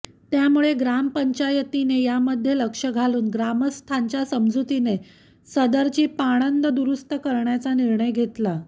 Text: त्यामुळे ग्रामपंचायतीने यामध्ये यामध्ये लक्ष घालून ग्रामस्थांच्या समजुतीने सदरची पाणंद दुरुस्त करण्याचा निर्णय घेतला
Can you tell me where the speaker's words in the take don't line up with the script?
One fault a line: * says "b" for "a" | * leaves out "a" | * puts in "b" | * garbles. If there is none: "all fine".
* leaves out "यामध्ये"